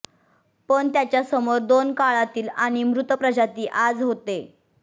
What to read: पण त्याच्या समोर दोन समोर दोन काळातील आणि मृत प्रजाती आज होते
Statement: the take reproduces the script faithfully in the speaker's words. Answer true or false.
false